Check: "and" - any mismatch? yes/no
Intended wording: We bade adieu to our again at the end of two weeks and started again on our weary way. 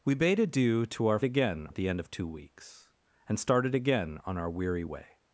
no